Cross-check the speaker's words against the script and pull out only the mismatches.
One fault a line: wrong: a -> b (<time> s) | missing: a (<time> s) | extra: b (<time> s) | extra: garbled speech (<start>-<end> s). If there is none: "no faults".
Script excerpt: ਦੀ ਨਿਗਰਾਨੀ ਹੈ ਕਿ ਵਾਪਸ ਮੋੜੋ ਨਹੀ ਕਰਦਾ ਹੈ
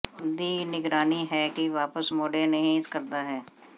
no faults